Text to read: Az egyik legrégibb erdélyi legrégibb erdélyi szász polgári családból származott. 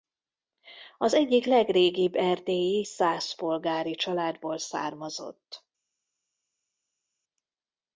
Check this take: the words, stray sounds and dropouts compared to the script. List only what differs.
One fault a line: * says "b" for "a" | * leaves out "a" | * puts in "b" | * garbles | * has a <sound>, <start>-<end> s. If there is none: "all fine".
* leaves out "legrégibb erdélyi"